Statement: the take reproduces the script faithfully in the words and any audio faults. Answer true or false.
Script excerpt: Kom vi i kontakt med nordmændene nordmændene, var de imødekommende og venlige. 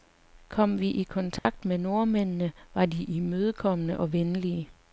false